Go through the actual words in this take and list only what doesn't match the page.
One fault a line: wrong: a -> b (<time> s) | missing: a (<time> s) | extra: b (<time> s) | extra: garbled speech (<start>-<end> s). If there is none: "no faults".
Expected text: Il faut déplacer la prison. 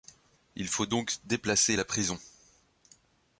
extra: donc (0.9 s)